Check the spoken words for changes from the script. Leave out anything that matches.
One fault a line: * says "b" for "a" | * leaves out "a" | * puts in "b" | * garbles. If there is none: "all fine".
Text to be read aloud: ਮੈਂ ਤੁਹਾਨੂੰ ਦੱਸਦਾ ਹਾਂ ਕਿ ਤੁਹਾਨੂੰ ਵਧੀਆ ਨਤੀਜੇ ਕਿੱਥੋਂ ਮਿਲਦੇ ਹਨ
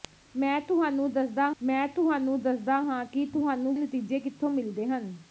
* puts in "ਮੈਂ ਤੁਹਾਨੂੰ ਦੱਸਦਾ"
* leaves out "ਵਧੀਆ"